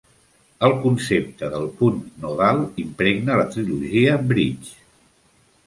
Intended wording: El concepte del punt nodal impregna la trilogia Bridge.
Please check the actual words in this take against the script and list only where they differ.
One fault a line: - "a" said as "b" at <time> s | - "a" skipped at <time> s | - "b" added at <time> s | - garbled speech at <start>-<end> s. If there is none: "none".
none